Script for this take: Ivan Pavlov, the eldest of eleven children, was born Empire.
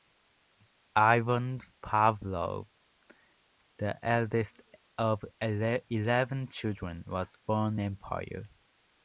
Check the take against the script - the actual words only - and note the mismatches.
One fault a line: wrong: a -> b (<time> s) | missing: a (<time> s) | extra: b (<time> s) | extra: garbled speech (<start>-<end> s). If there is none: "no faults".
no faults